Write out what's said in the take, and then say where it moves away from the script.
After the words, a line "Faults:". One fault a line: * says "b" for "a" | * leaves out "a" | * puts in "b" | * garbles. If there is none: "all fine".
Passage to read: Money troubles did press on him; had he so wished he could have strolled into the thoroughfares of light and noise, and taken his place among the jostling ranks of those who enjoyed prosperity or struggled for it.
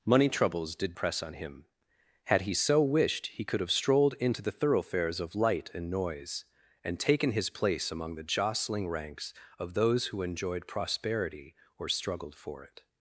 Money troubles did press on him; had he so wished he could have strolled into the thoroughfares of light and noise, and taken his place among the jostling ranks of those who enjoyed prosperity or struggled for it.
Faults:
all fine